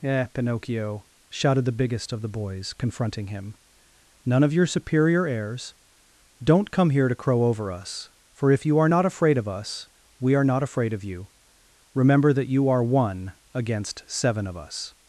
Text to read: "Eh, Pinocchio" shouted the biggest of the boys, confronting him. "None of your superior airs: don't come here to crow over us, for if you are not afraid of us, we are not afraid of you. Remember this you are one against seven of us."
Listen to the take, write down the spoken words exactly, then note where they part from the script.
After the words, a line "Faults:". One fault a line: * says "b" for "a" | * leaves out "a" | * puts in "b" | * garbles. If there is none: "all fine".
"Eh, Pinocchio" shouted the biggest of the boys, confronting him. "None of your superior airs: don't come here to crow over us, for if you are not afraid of us, we are not afraid of you. Remember that you are one against seven of us."
Faults:
* says "that" for "this"